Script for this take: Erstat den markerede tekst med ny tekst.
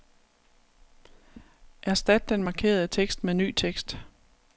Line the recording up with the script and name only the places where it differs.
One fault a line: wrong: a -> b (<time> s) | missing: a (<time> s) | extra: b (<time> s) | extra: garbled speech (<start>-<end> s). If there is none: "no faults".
no faults